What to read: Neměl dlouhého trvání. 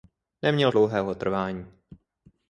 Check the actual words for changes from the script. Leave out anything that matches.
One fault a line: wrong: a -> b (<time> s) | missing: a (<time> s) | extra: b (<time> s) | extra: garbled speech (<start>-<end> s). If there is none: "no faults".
no faults